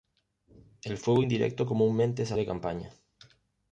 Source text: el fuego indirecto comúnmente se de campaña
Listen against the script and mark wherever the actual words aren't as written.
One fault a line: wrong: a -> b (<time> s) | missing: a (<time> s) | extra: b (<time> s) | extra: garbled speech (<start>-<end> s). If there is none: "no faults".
no faults